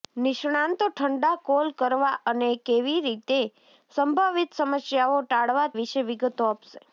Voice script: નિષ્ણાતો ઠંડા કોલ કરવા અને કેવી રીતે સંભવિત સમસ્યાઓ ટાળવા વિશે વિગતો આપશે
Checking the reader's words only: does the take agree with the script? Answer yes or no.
yes